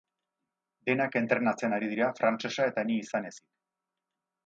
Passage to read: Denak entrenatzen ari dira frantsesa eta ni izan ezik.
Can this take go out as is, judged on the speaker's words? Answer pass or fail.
pass